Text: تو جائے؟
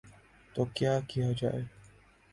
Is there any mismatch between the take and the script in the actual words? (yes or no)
yes